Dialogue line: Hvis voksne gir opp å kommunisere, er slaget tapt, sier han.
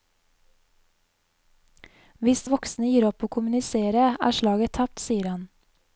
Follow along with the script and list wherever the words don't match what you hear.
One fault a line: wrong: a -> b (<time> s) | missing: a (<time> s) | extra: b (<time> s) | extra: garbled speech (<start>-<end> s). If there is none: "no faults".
no faults